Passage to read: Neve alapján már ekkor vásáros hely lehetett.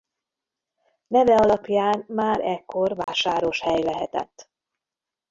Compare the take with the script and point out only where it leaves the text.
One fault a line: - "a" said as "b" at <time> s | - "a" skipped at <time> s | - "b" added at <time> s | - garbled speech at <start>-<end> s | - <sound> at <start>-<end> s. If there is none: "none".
- dropout at 3.0-3.1 s